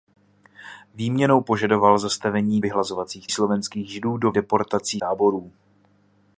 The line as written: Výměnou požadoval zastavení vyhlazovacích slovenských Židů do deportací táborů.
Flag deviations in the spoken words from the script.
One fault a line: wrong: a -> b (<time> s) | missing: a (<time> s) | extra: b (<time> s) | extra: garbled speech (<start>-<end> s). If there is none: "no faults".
no faults